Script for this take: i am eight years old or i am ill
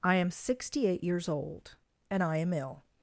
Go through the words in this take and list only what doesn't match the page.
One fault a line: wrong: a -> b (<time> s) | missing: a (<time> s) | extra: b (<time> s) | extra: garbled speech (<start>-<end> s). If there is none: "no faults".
extra: sixty (0.3 s)
wrong: or -> and (2.1 s)